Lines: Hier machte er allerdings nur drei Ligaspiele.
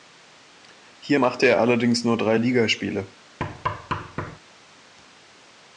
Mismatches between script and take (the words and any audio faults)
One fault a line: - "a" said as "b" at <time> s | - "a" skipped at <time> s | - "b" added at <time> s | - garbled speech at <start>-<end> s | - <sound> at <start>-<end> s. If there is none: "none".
- thud at 3.4-4.4 s